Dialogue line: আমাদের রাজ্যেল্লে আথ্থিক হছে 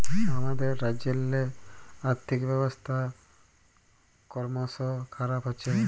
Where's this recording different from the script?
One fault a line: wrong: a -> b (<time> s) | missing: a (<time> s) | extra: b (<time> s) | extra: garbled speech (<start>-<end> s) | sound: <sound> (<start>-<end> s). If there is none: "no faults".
extra: ব্যবস্থা করমশ খারাপ (2.5 s)